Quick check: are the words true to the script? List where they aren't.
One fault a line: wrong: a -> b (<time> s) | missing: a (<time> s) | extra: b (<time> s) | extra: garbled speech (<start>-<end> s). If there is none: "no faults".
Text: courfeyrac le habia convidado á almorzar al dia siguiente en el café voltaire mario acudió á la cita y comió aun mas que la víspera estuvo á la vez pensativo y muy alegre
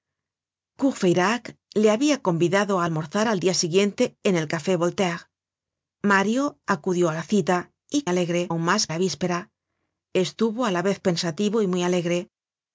wrong: comió -> alegre (8.1 s)
missing: que (8.8 s)